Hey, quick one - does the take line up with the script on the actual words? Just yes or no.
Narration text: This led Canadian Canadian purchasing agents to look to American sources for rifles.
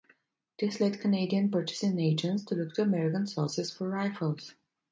no